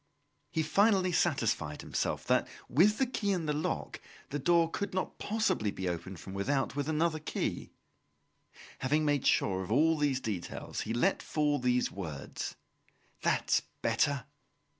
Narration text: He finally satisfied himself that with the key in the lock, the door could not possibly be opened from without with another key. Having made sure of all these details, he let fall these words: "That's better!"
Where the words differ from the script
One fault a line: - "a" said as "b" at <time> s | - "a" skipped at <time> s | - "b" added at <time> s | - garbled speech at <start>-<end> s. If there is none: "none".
none